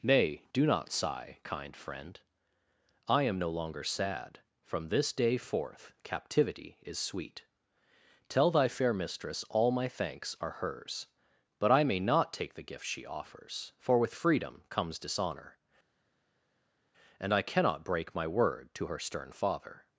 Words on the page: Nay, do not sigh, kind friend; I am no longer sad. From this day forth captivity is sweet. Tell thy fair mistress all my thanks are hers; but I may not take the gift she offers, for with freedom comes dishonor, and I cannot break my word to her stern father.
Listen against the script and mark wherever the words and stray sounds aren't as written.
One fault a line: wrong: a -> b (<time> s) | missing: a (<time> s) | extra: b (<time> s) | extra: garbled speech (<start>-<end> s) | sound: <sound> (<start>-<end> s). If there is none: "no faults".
no faults